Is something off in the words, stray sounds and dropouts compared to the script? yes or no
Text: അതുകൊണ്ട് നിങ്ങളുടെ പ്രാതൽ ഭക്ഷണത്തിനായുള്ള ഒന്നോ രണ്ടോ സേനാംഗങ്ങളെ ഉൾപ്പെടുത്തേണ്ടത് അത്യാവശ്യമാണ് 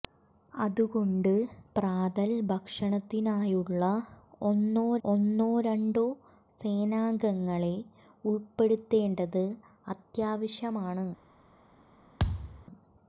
yes